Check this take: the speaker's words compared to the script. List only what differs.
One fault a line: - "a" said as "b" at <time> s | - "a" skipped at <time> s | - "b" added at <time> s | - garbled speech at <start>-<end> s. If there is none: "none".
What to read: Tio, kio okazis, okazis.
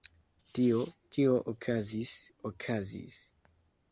none